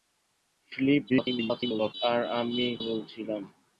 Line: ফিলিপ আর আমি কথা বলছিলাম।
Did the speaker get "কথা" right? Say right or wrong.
wrong